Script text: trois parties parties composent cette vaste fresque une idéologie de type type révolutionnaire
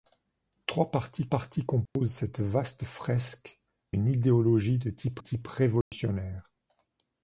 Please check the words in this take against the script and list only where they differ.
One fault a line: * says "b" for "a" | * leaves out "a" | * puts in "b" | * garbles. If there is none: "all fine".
all fine